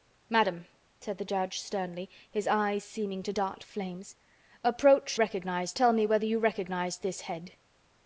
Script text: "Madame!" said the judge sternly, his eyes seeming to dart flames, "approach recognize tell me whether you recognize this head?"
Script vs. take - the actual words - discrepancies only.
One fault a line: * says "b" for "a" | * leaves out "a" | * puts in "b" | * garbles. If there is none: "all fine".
all fine